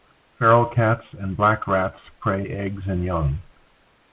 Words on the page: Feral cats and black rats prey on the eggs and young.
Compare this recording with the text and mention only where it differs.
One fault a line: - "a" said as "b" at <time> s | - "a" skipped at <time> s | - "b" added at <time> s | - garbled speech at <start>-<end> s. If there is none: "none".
- "on" skipped at 2.4 s